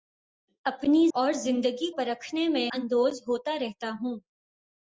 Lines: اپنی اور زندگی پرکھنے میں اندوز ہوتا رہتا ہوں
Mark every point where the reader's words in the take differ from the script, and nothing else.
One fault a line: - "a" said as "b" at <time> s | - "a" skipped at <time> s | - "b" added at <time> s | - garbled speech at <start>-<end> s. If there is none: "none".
none